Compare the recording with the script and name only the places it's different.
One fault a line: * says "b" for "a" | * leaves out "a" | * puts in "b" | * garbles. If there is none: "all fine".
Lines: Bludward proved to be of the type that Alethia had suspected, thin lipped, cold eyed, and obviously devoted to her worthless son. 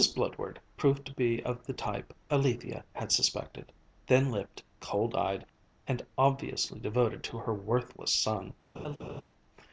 * leaves out "that"